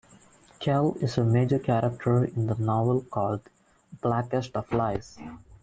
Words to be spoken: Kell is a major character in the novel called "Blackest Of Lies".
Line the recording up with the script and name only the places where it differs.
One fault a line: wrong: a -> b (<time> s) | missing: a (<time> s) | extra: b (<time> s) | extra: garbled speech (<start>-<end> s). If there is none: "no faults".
no faults